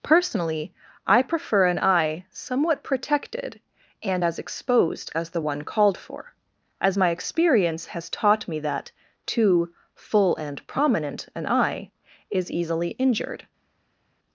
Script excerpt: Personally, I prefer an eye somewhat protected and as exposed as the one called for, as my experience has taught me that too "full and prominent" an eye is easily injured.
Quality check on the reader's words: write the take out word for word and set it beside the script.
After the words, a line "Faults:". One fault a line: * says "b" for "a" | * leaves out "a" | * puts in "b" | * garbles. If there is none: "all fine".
Personally, I prefer an eye somewhat protected and as exposed as the one called for, as my experience has taught me that too "full and prominent" an eye is easily injured.
Faults:
all fine